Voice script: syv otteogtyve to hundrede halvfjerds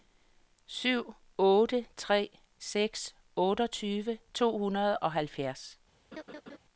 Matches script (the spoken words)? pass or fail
fail